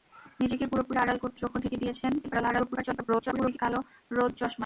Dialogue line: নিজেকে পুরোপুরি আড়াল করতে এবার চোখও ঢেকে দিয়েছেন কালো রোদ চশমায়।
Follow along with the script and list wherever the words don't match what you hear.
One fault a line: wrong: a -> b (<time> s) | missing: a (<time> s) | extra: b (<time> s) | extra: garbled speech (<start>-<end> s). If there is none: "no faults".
missing: এবার (1.4 s)
extra: garbled speech (2.2-3.6 s)